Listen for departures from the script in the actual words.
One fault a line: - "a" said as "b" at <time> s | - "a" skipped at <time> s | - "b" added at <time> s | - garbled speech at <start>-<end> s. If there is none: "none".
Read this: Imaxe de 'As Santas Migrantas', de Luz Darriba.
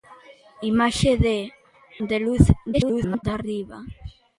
- "As Santas Migrantas" skipped at 1.4 s
- garbled speech at 2.7-3.2 s